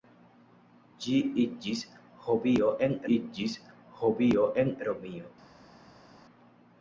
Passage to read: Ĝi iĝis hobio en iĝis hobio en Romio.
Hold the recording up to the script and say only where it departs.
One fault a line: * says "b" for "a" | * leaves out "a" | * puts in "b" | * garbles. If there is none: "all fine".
all fine